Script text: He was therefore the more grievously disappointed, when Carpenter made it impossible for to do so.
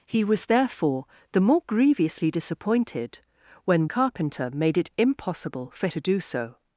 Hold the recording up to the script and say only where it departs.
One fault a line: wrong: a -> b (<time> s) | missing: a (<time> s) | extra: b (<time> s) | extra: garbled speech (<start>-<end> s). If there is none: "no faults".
no faults